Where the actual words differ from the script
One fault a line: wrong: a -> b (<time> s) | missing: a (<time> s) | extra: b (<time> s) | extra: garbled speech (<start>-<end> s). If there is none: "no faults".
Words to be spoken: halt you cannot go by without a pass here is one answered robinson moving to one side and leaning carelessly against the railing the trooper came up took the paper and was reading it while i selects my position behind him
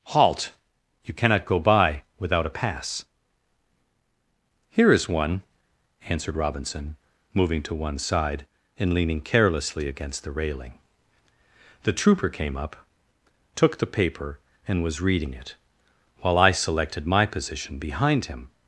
wrong: selects -> selected (16.5 s)